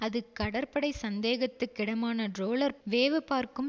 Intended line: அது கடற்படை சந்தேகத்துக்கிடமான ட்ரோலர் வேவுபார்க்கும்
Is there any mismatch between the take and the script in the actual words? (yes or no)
no